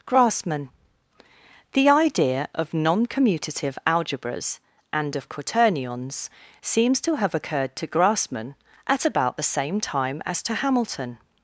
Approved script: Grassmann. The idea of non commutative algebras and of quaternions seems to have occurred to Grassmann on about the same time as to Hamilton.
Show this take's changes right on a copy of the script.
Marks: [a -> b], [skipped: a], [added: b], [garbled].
Grassmann. The idea of non commutative algebras and of quaternions seems to have occurred to Grassmann [on -> at] about the same time as to Hamilton.